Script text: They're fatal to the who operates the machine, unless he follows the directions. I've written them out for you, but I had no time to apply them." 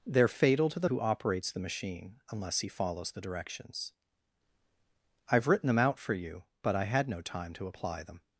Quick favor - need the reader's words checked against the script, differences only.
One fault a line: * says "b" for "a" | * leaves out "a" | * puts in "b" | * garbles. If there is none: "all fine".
all fine